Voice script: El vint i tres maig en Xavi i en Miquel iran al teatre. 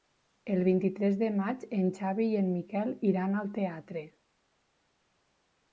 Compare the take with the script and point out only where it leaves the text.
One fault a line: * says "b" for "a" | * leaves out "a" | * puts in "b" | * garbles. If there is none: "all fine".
* puts in "de"